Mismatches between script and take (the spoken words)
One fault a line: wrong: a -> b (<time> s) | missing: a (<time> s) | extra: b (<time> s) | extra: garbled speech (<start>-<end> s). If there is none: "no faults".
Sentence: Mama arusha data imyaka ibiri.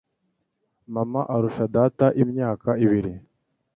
no faults